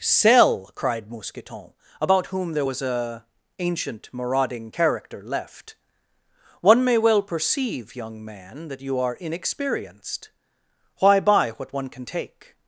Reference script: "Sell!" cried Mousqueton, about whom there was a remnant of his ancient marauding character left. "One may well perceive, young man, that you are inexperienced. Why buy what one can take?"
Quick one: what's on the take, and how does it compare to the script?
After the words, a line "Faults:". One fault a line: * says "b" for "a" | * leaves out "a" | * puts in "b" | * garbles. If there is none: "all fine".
"Sell!" cried Mousqueton, about whom there was a ancient marauding character left. "One may well perceive, young man, that you are inexperienced. Why buy what one can take?"
Faults:
* leaves out "remnant of his"